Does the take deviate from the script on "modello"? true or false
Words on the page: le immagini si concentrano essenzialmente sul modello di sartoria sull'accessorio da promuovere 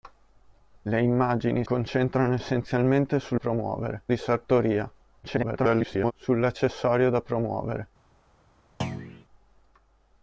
true